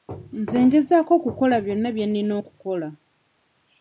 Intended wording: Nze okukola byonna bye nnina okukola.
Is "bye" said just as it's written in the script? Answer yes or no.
yes